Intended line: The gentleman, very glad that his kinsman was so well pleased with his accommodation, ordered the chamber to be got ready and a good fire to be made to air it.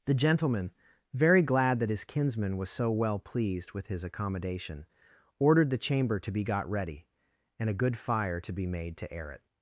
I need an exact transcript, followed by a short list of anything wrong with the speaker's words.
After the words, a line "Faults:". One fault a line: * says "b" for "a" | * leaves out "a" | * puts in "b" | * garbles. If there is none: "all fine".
The gentleman, very glad that his kinsman was so well pleased with his accommodation, ordered the chamber to be got ready and a good fire to be made to air it.
Faults:
all fine